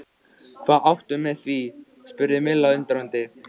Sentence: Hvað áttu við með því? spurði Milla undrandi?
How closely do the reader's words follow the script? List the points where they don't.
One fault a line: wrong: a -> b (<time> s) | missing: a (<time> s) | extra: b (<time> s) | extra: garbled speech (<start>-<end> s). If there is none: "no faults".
no faults